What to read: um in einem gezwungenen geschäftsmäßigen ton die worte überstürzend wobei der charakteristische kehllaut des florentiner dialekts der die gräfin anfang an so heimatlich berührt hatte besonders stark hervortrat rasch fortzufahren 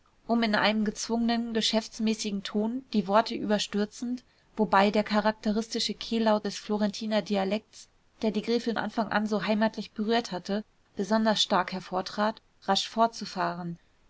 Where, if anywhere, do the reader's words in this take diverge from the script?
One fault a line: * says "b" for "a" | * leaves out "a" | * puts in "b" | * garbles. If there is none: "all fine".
all fine